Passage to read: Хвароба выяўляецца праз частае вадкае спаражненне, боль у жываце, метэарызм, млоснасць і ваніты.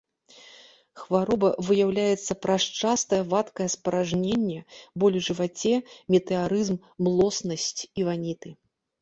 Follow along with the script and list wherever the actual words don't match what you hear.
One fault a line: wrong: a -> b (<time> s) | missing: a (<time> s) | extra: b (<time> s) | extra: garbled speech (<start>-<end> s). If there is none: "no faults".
no faults